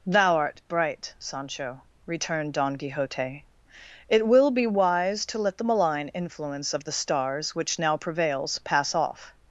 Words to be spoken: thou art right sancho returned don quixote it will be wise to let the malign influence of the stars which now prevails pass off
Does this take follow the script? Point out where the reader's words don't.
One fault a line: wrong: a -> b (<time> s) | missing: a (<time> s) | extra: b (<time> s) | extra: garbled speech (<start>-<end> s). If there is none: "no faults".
wrong: right -> bright (0.7 s)